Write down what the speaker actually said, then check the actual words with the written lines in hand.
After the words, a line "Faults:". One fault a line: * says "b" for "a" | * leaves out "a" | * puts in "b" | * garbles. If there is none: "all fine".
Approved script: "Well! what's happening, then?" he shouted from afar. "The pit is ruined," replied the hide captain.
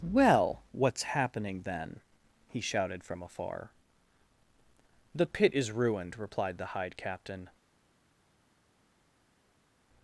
"Well! what's happening, then?" he shouted from afar. "The pit is ruined," replied the hide captain.
Faults:
all fine